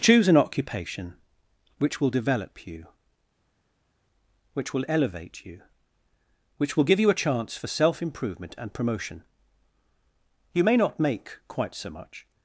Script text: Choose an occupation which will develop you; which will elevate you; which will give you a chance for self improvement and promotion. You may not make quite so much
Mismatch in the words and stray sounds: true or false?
false